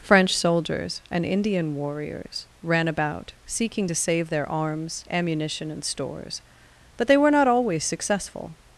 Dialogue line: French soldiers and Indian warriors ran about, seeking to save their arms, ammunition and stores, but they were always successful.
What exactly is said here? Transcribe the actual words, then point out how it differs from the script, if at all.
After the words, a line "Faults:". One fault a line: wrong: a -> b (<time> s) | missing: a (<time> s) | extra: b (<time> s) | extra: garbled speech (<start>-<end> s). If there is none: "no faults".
French soldiers and Indian warriors ran about, seeking to save their arms, ammunition and stores, but they were not always successful.
Faults:
extra: not (7.3 s)